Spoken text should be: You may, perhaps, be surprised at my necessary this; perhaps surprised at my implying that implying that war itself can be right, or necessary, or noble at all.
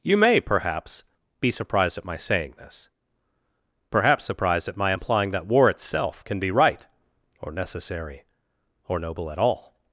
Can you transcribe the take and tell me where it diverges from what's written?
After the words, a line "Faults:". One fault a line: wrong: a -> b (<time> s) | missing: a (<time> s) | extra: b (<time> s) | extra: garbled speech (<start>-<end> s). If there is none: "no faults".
You may, perhaps, be surprised at my saying this; perhaps surprised at my implying that war itself can be right, or necessary, or noble at all.
Faults:
wrong: necessary -> saying (2.2 s)
missing: implying that (5.5 s)